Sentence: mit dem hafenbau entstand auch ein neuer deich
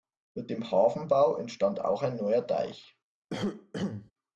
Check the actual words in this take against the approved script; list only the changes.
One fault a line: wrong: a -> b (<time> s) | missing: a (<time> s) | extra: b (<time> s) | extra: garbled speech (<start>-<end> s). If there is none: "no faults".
no faults